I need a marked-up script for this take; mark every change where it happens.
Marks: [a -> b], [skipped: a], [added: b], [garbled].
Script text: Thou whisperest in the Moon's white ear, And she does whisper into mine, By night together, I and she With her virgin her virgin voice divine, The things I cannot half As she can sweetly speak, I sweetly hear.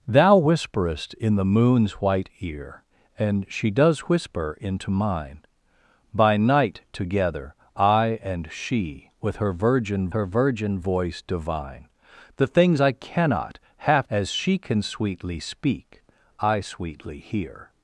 Thou whisperest in the Moon's white ear, And she does whisper into mine, By night together, I and she With her virgin her virgin voice divine, The things I cannot half As she can sweetly speak, I sweetly hear.